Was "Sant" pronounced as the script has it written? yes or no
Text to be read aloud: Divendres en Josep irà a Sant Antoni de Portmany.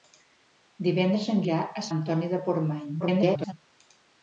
no